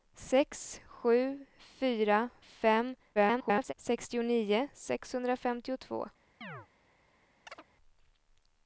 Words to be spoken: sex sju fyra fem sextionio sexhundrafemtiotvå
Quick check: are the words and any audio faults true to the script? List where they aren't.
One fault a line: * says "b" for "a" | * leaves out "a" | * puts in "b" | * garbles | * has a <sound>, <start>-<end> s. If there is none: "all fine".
* garbles
* has a chirp, 6.4-6.7 s
* has a chirp, 7.5-7.6 s